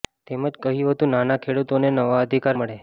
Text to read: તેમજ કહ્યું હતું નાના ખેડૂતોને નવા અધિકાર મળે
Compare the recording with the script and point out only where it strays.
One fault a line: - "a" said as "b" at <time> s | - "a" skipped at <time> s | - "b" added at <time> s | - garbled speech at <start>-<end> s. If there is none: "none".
none